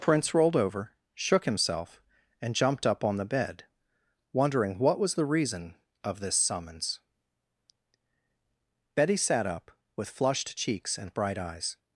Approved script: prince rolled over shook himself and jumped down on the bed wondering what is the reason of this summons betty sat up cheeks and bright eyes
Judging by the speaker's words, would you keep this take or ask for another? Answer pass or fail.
fail